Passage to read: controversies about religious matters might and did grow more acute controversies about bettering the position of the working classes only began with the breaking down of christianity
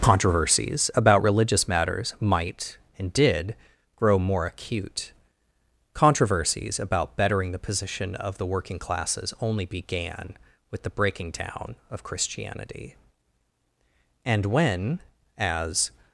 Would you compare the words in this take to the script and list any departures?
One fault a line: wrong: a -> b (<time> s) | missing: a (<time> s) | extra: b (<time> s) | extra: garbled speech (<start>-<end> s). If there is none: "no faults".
extra: and when as (14.2 s)